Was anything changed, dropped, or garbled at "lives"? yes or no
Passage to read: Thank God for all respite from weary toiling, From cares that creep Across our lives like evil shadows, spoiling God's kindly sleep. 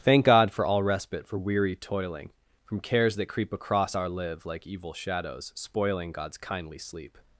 yes